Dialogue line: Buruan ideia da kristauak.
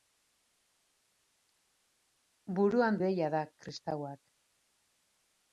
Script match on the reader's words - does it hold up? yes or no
yes